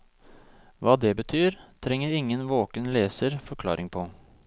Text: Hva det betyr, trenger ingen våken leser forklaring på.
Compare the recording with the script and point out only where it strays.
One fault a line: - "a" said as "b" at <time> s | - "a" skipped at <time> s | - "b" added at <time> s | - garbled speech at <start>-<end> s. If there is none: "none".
none